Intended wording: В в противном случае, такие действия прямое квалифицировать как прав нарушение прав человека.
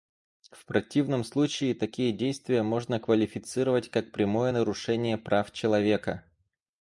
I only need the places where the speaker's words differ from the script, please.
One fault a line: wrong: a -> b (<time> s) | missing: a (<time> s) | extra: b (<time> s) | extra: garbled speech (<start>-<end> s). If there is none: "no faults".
missing: в (0.7 s)
wrong: прямое -> можно (2.6 s)
wrong: прав -> прямое (4.1 s)